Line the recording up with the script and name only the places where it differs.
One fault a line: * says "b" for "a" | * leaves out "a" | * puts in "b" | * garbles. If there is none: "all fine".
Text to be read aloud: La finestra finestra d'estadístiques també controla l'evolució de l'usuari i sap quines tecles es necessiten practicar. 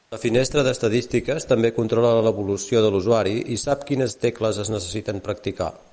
* leaves out "finestra"